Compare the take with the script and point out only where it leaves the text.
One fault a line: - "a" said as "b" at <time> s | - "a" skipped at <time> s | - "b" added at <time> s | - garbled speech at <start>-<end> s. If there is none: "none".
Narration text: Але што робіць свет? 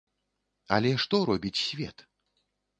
none